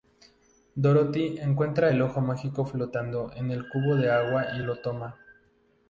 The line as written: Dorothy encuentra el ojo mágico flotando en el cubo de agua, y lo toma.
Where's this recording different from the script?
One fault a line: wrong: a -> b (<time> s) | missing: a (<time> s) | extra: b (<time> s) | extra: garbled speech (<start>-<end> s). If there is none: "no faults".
no faults